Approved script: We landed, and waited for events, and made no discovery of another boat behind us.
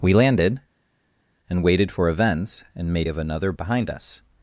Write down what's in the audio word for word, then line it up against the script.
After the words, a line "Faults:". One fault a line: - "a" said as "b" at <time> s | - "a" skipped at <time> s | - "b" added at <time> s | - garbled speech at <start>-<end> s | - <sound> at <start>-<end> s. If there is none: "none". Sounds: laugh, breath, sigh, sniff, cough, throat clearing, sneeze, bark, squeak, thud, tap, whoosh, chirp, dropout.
We landed, and waited for events, and made of another behind us.
Faults:
- "no discovery" skipped at 3.1 s
- "boat" skipped at 3.5 s